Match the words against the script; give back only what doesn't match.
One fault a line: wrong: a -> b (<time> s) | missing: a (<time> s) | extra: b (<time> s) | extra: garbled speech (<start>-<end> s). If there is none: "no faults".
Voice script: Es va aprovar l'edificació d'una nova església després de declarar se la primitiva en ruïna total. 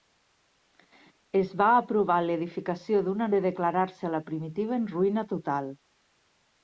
missing: nova església després (3.3 s)